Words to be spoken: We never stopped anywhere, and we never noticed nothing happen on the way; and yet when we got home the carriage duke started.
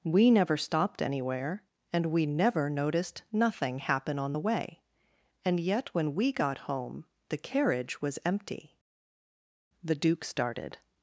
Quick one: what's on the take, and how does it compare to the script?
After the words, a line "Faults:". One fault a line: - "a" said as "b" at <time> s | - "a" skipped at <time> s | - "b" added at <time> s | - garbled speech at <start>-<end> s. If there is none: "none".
We never stopped anywhere, and we never noticed nothing happen on the way; and yet when we got home the carriage was empty." The duke started.
Faults:
- "was empty The" added at 8.0 s